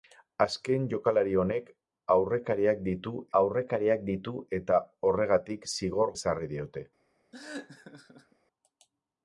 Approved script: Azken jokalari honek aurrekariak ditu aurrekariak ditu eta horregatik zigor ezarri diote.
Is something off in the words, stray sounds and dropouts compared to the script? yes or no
yes